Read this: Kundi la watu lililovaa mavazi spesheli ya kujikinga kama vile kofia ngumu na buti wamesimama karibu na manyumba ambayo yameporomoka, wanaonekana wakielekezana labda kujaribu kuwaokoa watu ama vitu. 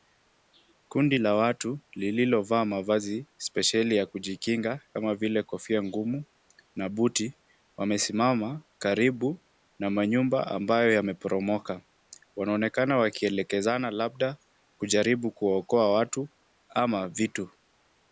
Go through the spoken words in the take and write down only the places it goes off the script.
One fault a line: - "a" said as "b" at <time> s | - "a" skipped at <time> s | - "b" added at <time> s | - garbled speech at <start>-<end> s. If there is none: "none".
none